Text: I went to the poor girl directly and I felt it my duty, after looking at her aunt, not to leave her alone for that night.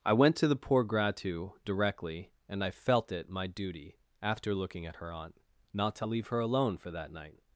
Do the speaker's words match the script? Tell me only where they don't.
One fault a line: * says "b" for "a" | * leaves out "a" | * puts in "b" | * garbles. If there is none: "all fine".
* says "gratu" for "girl"